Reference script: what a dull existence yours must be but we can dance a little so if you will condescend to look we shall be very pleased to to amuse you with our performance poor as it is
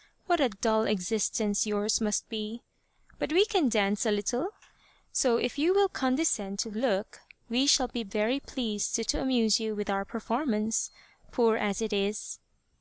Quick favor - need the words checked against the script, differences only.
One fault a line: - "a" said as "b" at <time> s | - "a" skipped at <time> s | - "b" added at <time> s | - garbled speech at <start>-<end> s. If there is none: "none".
none